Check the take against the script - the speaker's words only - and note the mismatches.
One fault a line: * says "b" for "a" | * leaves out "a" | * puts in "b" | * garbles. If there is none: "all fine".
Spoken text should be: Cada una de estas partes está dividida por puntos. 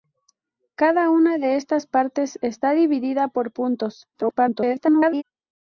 * garbles